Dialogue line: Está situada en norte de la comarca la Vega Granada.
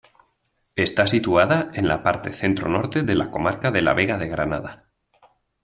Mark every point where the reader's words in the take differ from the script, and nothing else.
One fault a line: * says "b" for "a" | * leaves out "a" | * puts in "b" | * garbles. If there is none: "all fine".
* puts in "la parte centro"
* puts in "de"
* puts in "de"